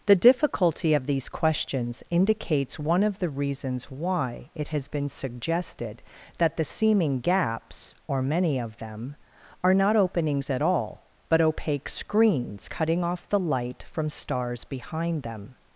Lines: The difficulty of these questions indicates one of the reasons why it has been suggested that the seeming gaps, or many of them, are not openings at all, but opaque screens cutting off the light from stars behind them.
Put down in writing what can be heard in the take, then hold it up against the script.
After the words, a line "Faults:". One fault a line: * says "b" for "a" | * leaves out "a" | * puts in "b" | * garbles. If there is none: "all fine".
The difficulty of these questions indicates one of the reasons why it has been suggested that the seeming gaps, or many of them, are not openings at all, but opaque screens cutting off the light from stars behind them.
Faults:
all fine